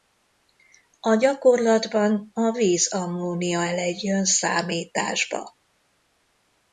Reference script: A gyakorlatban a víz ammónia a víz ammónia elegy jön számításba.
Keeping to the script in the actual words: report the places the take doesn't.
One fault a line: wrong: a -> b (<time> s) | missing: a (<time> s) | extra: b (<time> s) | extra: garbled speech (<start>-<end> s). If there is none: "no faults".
missing: a víz ammónia (3.6 s)